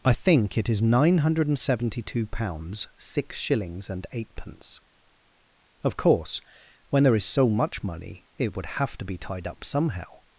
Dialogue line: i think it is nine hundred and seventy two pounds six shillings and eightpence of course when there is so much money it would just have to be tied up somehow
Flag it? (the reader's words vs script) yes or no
yes